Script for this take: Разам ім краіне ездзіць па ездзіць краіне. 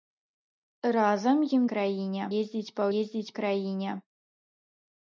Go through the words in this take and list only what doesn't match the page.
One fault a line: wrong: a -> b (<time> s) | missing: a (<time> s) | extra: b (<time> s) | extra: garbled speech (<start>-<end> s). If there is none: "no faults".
no faults